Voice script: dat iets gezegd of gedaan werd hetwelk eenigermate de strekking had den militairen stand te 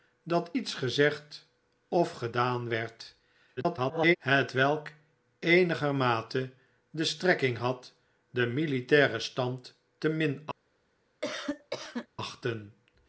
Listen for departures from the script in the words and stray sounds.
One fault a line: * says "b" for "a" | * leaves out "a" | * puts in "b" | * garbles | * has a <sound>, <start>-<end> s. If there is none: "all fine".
* garbles
* has a cough, 11.2-12.1 s